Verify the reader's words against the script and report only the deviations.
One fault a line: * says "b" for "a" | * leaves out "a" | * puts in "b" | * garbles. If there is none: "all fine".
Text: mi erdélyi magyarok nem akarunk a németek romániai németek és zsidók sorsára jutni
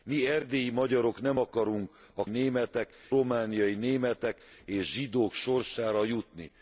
all fine